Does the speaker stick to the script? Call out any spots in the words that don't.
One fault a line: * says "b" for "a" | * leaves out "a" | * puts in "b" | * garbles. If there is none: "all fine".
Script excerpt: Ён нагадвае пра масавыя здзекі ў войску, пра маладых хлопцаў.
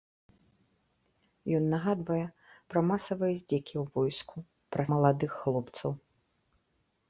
all fine